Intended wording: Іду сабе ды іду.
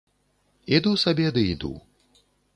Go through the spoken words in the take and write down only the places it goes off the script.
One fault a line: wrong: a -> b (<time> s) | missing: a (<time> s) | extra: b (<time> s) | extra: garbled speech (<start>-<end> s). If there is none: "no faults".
no faults